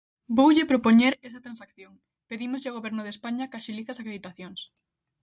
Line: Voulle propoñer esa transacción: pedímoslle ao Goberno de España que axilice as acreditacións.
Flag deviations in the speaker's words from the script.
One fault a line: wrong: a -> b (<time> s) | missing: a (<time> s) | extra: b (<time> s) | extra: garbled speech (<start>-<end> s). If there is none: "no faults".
no faults